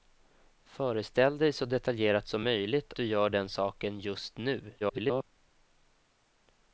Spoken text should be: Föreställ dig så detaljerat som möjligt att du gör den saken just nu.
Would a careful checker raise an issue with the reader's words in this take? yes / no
yes